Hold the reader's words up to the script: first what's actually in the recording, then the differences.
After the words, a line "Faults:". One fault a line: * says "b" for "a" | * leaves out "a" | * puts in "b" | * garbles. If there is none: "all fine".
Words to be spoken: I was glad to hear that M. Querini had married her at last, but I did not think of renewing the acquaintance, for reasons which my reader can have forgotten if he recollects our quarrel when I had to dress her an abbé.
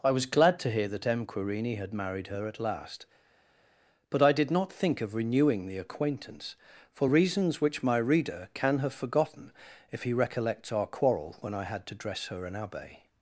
I was glad to hear that M. Querini had married her at last, but I did not think of renewing the acquaintance, for reasons which my reader can have forgotten if he recollects our quarrel when I had to dress her an abbé.
Faults:
all fine